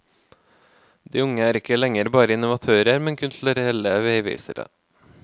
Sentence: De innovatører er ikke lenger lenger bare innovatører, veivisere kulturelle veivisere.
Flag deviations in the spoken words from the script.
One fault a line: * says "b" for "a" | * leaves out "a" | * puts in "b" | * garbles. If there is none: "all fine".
* says "unge" for "innovatører"
* leaves out "lenger"
* says "men" for "veivisere"